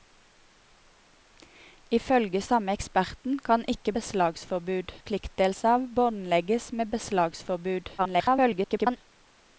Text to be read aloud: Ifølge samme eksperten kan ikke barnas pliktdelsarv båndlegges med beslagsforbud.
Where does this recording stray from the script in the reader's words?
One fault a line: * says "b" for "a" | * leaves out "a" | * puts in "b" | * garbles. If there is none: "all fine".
* says "beslagsforbud" for "barnas"
* garbles